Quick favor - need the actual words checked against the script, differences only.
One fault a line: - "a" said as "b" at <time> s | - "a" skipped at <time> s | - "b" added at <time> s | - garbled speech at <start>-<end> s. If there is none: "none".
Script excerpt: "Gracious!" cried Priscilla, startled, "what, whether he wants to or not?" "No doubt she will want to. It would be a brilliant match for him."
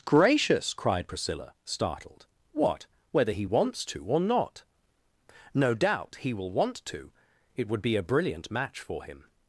- "she" said as "he" at 6.2 s